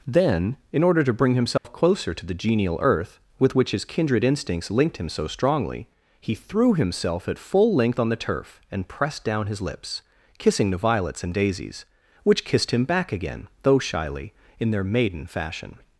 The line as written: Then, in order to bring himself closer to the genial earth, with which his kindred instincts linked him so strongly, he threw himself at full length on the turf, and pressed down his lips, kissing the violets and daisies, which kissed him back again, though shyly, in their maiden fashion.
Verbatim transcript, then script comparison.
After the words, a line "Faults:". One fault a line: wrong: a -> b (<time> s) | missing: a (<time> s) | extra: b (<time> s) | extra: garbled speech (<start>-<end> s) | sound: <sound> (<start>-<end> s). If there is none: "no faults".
Then, in order to bring himself closer to the genial earth, with which his kindred instincts linked him so strongly, he threw himself at full length on the turf, and pressed down his lips, kissing the violets and daisies, which kissed him back again, though shyly, in their maiden fashion.
Faults:
sound: dropout (1.6-1.6 s)